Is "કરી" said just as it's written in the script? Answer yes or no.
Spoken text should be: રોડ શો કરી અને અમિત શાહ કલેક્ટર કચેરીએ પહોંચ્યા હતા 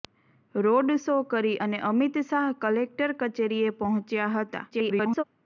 yes